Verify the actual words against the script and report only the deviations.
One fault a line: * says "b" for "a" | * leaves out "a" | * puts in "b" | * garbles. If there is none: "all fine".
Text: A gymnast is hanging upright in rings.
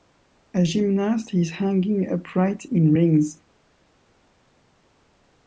all fine